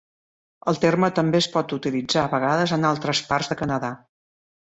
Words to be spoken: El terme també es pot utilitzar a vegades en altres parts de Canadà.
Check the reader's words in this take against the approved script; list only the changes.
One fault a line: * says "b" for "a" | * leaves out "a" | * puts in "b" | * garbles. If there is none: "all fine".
all fine